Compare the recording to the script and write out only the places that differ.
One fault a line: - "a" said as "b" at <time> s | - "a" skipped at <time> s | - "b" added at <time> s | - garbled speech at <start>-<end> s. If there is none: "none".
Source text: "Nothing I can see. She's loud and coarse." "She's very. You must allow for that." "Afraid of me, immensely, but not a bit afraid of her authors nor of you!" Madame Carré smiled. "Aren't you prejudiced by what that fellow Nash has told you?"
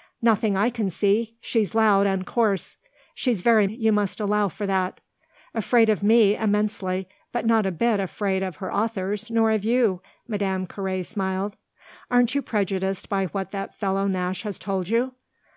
none